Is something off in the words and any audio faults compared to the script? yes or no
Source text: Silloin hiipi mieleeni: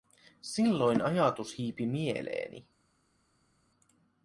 yes